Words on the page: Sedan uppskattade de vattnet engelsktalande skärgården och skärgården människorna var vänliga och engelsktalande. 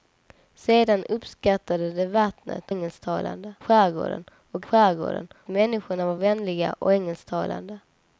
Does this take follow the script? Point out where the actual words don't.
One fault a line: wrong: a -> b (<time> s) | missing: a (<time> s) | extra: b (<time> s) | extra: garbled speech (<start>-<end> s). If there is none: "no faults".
no faults